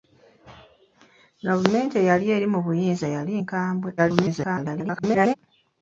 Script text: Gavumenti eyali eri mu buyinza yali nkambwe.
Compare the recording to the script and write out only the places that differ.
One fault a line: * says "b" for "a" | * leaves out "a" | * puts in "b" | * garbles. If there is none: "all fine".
* garbles